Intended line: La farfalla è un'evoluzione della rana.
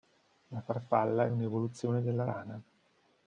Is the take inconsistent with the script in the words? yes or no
no